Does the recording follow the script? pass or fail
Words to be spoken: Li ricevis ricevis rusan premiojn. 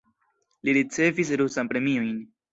fail